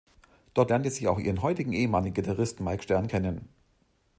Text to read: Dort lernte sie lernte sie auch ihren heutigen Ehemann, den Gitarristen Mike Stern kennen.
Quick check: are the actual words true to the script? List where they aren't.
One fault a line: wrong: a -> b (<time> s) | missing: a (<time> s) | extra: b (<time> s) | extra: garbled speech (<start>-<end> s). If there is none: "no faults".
missing: lernte sie (1.1 s)